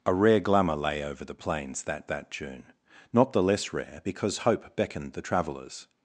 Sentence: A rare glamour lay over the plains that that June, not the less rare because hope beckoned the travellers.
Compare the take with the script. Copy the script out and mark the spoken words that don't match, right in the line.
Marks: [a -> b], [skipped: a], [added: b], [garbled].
A rare glamour lay over the plains that that June, not the less rare because hope beckoned the travellers.